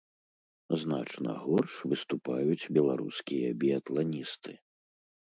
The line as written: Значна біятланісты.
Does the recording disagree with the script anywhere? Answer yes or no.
yes